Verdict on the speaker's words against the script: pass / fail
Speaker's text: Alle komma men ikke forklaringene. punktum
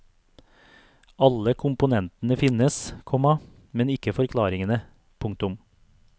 fail